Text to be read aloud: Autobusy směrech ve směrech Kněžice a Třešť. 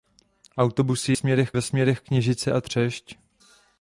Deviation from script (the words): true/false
false